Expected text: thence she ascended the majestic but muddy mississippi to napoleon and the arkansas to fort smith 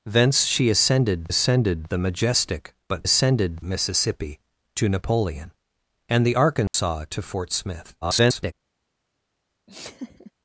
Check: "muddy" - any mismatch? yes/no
yes